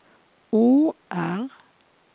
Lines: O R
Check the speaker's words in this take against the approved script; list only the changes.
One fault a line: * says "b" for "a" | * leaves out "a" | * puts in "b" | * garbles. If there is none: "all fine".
all fine